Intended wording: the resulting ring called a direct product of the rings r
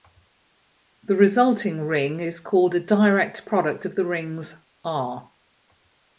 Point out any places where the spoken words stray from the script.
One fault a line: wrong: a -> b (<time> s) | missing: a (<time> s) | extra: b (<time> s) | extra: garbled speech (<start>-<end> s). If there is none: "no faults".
extra: is (2.2 s)